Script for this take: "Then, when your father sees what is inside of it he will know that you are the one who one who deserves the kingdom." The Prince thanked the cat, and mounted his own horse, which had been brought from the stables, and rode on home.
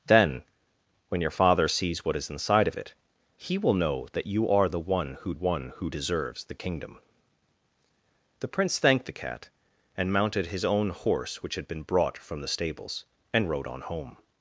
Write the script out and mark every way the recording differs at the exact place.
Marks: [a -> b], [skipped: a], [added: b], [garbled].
"Then, when your father sees what is inside of it he will know that you are the one who one who deserves the kingdom." The Prince thanked the cat, and mounted his own horse, which had been brought from the stables, and rode on home.